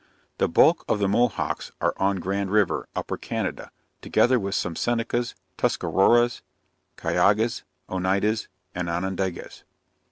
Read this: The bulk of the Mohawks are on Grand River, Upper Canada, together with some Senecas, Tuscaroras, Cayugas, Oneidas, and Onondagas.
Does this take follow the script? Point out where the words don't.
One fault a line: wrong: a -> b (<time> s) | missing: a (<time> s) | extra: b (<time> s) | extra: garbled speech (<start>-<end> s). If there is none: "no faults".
no faults